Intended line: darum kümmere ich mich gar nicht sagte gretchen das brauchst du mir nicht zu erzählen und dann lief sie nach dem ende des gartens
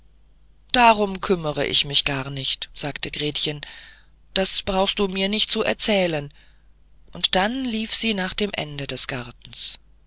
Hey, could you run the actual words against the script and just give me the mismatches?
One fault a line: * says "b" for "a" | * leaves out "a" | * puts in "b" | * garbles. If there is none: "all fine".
all fine